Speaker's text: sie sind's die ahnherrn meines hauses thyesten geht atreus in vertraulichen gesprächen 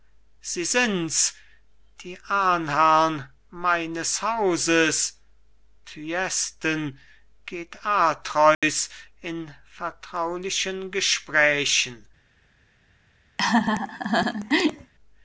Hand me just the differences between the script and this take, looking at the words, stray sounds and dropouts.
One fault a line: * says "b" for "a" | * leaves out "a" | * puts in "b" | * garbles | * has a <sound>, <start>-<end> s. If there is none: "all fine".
* has a dropout, 8.5-8.6 s
* has a laugh, 13.4-14.9 s